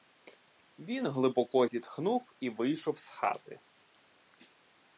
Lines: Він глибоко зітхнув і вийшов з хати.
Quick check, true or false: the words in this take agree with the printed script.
true